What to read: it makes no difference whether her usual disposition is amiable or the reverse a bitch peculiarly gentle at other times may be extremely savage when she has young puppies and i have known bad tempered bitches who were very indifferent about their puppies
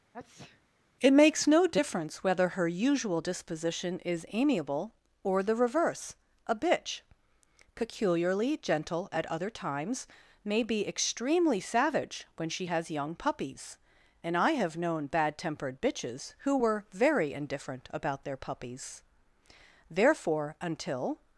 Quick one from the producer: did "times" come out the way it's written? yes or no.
yes